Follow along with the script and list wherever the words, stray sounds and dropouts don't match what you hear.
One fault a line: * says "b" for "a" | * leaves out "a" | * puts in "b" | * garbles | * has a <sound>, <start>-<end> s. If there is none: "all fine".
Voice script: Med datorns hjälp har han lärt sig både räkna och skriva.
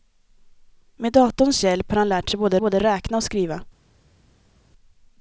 * puts in "både"